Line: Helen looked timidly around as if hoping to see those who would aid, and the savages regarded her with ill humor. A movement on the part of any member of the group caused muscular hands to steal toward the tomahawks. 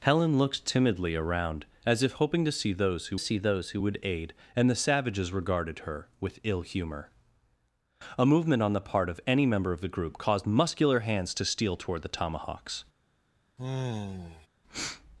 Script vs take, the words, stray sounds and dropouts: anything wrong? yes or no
yes